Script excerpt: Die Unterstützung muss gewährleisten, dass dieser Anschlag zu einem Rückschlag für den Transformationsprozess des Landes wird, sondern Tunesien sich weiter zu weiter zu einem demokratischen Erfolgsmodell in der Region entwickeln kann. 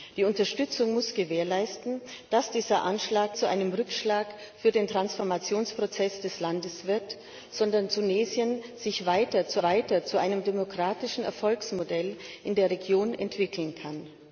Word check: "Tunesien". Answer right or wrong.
right